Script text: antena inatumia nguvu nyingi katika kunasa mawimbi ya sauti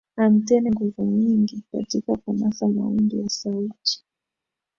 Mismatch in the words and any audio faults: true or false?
true